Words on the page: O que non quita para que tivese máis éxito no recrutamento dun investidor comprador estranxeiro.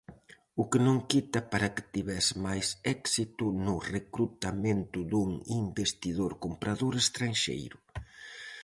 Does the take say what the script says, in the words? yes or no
yes